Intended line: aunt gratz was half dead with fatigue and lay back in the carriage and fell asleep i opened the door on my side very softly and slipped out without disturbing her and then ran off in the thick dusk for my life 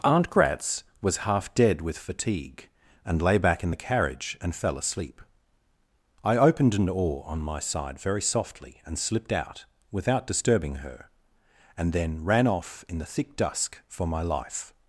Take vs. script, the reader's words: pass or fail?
fail